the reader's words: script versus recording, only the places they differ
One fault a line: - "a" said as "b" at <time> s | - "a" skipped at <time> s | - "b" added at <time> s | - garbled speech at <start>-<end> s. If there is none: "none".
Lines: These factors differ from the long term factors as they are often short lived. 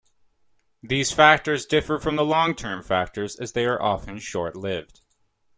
none